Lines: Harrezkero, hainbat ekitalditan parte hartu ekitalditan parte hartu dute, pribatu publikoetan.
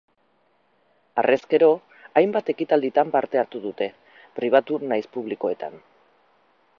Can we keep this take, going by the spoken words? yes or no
no